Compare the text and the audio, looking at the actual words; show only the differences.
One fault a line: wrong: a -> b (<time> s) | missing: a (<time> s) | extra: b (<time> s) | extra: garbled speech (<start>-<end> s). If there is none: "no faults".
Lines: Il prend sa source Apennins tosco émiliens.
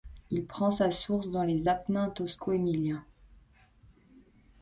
extra: dans les (1.3 s)